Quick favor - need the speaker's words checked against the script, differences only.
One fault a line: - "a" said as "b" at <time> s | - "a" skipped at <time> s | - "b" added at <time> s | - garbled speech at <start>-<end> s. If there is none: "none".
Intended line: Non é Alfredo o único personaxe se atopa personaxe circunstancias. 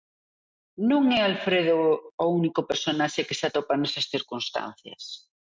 - "que" added at 3.3 s
- "personaxe" said as "nesas" at 3.8 s